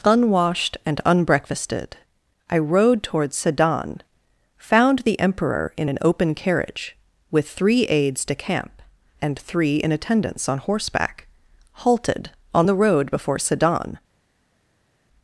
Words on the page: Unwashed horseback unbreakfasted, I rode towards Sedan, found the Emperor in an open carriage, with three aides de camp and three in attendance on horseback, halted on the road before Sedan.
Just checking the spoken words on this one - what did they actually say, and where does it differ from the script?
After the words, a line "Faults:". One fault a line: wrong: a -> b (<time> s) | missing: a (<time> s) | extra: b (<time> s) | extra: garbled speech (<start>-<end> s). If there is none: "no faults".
Unwashed and unbreakfasted, I rode towards Sedan, found the Emperor in an open carriage, with three aides de camp and three in attendance on horseback, halted on the road before Sedan.
Faults:
wrong: horseback -> and (0.8 s)